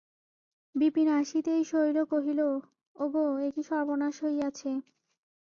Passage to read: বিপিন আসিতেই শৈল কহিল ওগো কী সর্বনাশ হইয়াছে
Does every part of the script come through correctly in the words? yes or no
no